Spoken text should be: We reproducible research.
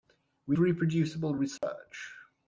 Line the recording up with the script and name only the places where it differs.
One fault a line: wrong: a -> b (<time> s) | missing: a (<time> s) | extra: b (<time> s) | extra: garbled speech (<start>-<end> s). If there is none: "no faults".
no faults